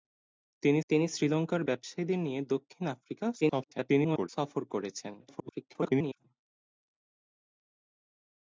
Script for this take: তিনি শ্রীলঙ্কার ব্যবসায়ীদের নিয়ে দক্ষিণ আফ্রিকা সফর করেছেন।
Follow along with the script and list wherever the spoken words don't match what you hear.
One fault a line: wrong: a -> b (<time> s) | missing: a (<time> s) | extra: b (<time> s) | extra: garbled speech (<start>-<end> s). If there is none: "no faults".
extra: তিনি (0.9 s)
extra: garbled speech (3.4-4.3 s)
extra: garbled speech (5.2-6.2 s)